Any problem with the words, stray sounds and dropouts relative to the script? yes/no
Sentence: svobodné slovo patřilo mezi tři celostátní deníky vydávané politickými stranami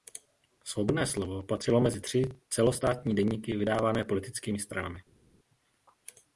no